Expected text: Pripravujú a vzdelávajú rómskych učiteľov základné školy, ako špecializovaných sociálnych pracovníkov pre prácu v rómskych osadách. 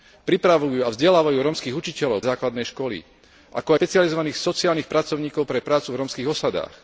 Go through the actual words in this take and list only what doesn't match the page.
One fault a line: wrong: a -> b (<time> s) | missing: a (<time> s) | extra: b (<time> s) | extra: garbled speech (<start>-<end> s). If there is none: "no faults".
no faults